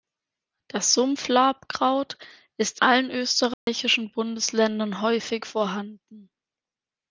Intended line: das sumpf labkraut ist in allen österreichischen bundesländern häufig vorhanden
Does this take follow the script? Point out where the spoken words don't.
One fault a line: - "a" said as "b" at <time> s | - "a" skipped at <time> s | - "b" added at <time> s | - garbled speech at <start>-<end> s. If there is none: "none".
- "in" skipped at 2.8 s